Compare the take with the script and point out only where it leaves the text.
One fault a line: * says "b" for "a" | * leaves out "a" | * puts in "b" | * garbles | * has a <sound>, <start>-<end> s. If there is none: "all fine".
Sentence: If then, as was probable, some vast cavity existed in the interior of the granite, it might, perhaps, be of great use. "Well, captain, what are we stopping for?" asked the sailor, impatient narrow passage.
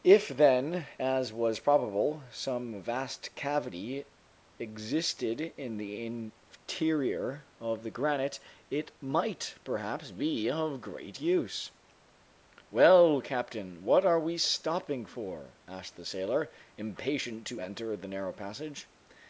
* puts in "to enter the"